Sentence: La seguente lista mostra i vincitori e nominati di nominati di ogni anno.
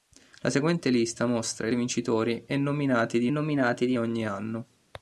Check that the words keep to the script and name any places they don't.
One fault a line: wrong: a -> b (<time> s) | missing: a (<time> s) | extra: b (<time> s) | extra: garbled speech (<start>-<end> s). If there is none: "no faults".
no faults